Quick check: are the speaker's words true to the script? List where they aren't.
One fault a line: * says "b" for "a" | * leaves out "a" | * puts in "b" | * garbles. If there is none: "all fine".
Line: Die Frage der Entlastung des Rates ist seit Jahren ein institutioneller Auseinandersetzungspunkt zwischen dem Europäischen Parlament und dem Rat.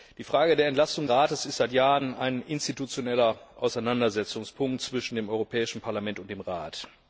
* leaves out "des"